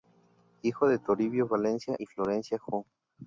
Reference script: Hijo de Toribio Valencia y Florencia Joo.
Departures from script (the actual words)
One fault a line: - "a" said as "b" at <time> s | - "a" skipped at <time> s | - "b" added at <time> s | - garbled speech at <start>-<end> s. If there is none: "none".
none